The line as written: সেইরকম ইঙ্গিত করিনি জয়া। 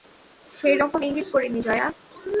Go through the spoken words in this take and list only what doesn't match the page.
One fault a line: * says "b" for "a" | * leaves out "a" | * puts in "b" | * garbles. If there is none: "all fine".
all fine